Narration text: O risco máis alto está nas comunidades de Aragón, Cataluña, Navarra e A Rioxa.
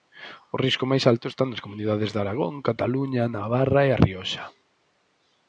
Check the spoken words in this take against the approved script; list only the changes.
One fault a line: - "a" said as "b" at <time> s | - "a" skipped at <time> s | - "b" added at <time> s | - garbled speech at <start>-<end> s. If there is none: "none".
none